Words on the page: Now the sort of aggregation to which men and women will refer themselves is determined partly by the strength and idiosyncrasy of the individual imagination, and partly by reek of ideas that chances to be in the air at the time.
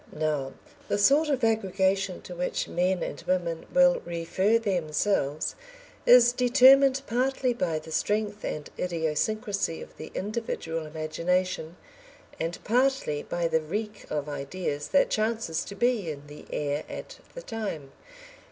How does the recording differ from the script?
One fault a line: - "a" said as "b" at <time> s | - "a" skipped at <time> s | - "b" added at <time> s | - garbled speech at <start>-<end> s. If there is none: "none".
- "the" added at 13.5 s